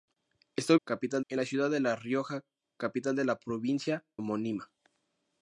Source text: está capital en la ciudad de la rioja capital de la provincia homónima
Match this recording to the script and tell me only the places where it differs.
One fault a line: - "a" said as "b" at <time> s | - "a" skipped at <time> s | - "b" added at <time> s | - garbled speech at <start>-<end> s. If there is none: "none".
none